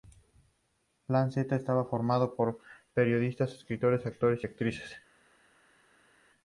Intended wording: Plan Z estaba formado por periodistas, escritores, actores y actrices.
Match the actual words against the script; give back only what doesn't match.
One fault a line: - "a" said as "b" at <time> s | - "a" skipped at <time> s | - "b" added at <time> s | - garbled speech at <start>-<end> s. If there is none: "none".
none